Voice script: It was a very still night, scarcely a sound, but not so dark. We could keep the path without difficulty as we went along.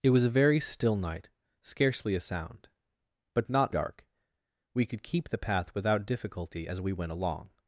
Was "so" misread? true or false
true